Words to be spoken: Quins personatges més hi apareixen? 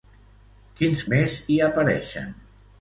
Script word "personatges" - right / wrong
wrong